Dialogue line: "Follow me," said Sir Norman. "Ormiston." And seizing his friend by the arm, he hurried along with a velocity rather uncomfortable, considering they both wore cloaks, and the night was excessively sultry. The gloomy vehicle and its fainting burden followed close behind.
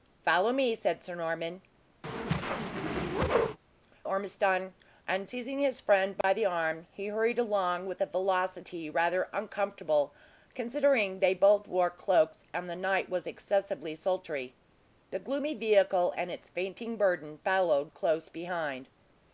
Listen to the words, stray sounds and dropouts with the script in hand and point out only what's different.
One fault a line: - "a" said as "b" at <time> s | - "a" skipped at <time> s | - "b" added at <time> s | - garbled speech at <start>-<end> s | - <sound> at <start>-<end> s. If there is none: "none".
- whoosh at 2.0-3.6 s
- dropout at 6.2-6.2 s